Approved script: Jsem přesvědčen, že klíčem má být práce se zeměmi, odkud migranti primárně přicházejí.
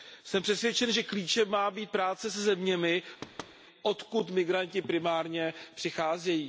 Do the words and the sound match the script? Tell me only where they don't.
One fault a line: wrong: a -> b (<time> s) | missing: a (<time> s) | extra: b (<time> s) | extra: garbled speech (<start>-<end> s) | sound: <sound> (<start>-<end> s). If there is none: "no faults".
sound: thud (3.2-3.6 s)